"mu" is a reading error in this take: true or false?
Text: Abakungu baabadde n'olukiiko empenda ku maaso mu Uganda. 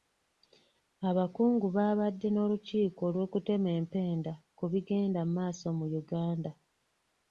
false